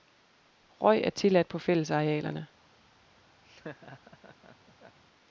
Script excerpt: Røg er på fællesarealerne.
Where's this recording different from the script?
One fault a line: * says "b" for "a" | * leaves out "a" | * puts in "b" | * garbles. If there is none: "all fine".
* puts in "tilladt"